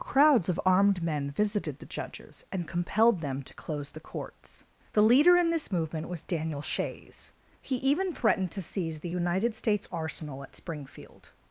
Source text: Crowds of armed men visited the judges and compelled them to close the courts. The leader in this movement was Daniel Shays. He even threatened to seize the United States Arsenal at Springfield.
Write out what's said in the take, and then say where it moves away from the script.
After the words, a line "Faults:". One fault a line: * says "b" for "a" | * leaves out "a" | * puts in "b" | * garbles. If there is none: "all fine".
Crowds of armed men visited the judges and compelled them to close the courts. The leader in this movement was Daniel Shays. He even threatened to seize the United States Arsenal at Springfield.
Faults:
all fine